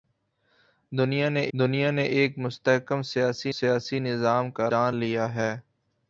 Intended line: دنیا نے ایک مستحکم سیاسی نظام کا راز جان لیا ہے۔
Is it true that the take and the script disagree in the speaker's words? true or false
true